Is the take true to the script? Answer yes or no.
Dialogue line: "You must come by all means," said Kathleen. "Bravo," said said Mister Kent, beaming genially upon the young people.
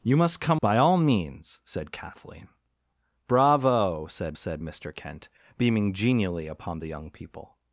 yes